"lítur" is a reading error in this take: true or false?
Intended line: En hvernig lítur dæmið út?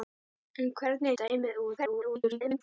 true